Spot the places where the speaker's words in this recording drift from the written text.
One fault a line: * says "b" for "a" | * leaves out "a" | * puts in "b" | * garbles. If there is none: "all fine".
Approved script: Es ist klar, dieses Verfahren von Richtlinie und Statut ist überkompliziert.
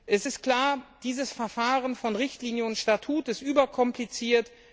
all fine